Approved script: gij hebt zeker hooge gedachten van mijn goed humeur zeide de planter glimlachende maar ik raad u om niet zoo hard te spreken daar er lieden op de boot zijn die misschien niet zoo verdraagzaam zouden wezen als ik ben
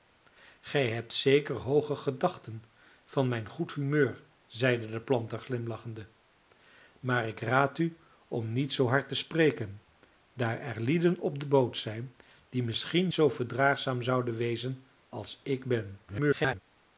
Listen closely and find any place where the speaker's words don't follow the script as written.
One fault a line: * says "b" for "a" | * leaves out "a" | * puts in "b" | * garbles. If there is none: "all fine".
* leaves out "niet"
* garbles